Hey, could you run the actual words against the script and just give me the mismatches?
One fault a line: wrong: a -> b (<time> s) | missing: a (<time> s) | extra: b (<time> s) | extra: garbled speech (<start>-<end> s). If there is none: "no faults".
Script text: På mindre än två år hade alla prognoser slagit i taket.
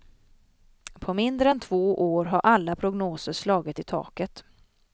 wrong: hade -> har (2.3 s)